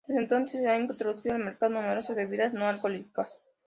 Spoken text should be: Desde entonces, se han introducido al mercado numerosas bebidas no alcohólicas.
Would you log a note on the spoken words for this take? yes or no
no